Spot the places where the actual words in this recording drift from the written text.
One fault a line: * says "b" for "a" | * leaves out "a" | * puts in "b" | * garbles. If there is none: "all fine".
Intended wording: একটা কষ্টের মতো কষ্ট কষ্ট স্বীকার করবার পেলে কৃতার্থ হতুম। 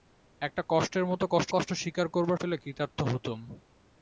all fine